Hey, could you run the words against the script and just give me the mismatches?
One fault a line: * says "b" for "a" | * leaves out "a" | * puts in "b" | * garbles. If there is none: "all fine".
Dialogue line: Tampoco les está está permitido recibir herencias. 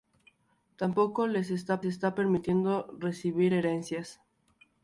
all fine